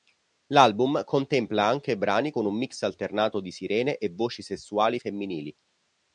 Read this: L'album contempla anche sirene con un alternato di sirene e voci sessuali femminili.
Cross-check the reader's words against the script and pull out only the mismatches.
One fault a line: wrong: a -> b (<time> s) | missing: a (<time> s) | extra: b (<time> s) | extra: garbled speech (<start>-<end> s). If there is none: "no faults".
wrong: sirene -> brani (1.9 s)
extra: mix (2.6 s)